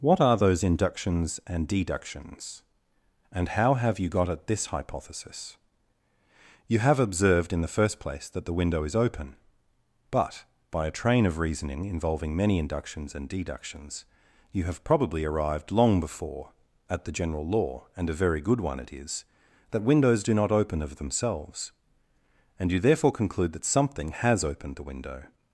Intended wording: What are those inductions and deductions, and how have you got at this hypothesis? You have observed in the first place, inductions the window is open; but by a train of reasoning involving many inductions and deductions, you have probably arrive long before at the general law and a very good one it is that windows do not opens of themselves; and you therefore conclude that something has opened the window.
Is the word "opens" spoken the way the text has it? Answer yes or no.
no